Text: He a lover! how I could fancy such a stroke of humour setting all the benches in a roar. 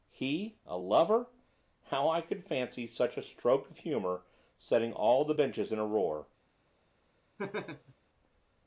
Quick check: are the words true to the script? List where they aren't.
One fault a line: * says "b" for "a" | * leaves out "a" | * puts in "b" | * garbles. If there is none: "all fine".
all fine